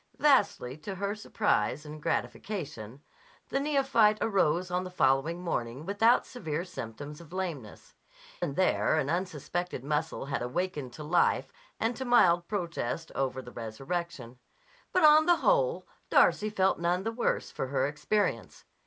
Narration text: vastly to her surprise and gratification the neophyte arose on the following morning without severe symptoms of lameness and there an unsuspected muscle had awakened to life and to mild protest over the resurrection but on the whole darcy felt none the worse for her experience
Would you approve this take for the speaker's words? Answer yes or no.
yes